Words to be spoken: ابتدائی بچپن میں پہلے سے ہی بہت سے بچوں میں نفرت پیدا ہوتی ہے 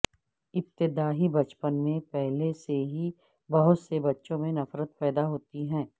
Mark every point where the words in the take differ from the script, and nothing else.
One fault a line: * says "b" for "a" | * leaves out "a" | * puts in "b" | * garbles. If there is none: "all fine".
all fine